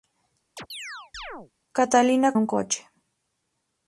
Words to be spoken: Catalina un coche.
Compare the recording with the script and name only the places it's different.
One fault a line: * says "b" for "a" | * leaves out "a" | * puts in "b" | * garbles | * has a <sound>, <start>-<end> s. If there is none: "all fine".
* has a chirp, 0.6-1.5 s